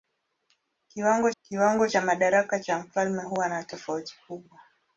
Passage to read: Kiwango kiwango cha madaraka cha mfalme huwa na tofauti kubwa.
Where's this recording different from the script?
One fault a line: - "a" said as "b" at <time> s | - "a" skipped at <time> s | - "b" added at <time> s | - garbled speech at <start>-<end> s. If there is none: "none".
none